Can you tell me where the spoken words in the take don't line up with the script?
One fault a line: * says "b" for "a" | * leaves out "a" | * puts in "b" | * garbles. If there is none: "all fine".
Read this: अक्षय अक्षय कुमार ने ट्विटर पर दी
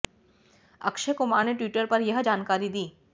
* leaves out "अक्षय"
* puts in "यह जानकारी"